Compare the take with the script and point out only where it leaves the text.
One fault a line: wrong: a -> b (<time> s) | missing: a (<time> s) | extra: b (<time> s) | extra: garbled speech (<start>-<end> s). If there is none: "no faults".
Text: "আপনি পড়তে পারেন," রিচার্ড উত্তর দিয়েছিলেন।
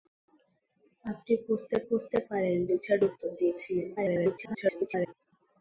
extra: পড়তে (1.9 s)
extra: garbled speech (4.0-5.1 s)